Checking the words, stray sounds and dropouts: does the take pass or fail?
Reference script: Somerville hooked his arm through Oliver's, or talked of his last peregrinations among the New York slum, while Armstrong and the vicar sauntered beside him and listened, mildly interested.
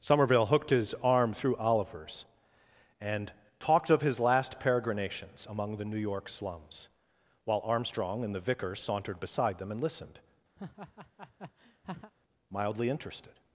fail